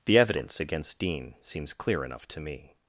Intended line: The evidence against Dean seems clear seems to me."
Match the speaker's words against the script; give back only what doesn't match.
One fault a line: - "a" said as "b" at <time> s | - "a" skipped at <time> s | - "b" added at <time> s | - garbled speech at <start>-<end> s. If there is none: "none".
- "seems" said as "enough" at 2.0 s